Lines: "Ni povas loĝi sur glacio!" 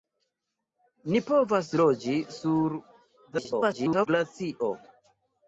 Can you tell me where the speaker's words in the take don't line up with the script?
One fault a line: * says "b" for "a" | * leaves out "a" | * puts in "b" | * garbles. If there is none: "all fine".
* garbles